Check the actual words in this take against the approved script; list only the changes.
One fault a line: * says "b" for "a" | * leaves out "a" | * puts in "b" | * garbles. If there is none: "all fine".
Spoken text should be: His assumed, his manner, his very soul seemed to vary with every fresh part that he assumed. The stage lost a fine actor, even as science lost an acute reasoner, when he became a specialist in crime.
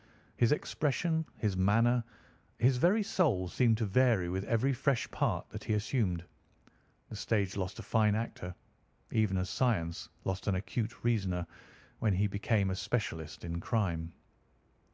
* says "expression" for "assumed"